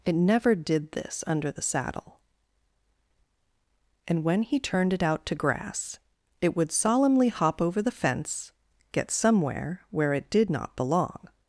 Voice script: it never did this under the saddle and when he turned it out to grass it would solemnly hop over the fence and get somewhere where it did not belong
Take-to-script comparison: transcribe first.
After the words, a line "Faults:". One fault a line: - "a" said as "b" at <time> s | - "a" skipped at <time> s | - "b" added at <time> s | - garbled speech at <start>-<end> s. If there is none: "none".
it never did this under the saddle and when he turned it out to grass it would solemnly hop over the fence get somewhere where it did not belong
Faults:
- "and" skipped at 8.5 s